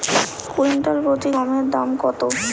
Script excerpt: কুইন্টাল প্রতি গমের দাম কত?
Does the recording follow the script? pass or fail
pass